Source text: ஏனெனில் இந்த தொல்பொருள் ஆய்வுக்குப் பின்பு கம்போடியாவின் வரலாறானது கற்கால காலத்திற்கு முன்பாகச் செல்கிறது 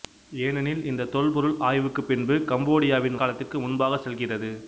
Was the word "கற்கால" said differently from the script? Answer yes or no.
yes